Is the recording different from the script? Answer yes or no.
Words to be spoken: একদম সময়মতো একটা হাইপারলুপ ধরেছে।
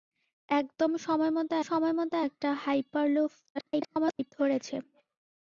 yes